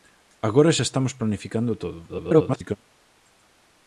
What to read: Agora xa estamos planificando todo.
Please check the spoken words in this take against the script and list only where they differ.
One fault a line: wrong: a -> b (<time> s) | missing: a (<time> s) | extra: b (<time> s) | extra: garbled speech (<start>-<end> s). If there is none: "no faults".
extra: garbled speech (2.1-2.8 s)